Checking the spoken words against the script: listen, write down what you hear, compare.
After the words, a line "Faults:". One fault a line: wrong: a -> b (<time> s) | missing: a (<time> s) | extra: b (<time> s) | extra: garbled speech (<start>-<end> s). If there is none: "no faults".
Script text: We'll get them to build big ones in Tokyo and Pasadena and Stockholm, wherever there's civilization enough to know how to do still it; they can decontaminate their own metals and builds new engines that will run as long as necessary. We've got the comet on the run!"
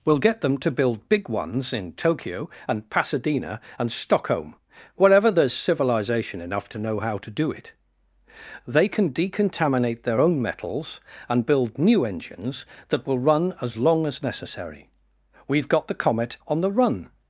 We'll get them to build big ones in Tokyo and Pasadena and Stockholm, wherever there's civilization enough to know how to do it; they can decontaminate their own metals and build new engines that will run as long as necessary. We've got the comet on the run!"
Faults:
missing: still (7.5 s)
wrong: builds -> build (11.5 s)